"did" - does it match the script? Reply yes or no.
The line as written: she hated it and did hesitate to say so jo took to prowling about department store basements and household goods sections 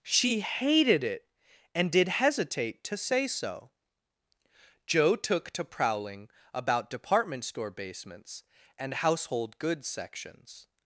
yes